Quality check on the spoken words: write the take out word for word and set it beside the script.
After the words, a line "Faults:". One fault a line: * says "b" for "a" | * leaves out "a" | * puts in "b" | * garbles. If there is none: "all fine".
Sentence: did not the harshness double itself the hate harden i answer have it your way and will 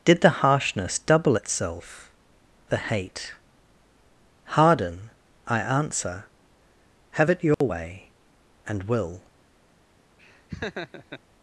did the harshness double itself the hate harden i answer have it your way and will
Faults:
* leaves out "not"